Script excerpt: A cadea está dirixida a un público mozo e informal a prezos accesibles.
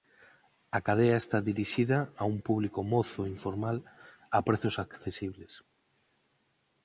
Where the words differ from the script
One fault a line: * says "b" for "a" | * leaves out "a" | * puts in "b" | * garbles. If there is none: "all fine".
all fine